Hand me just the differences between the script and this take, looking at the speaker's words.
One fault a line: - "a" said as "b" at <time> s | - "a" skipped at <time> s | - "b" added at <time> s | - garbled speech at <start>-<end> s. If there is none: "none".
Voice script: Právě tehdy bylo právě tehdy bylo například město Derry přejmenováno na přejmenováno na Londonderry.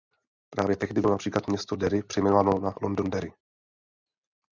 - "právě tehdy bylo" skipped at 1.1 s
- "přejmenováno na" skipped at 2.7 s